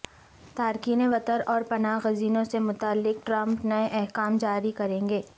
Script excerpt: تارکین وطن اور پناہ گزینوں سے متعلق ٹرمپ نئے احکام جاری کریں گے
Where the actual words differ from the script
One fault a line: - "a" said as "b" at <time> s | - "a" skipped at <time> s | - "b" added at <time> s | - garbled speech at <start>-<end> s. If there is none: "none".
none